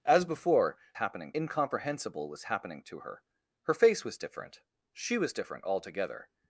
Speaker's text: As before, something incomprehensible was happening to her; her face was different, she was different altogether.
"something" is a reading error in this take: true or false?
true